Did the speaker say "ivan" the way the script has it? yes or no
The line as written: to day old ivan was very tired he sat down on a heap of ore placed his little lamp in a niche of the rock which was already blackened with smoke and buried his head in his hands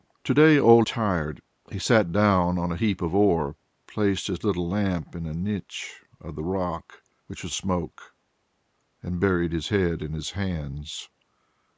no